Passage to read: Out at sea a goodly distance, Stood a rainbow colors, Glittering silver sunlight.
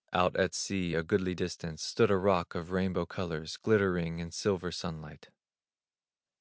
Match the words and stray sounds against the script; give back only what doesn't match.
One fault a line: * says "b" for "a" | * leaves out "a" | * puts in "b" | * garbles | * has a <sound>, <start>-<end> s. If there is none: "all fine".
* puts in "rock of"
* puts in "in"